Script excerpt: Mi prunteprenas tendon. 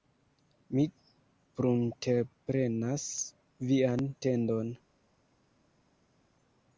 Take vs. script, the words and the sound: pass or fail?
fail